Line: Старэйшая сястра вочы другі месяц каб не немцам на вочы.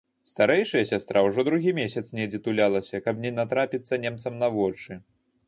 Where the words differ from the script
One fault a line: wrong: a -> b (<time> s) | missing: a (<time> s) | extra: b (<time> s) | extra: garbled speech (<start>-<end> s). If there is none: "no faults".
wrong: вочы -> ўжо (1.3 s)
extra: недзе тулялася (2.2 s)
extra: натрапіцца (3.4 s)